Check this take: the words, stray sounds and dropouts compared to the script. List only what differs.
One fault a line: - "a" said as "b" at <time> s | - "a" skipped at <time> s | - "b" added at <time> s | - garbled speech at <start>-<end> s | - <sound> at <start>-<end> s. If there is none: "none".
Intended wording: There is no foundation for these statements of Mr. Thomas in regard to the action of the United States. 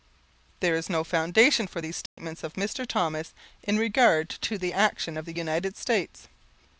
- dropout at 2.1-2.2 s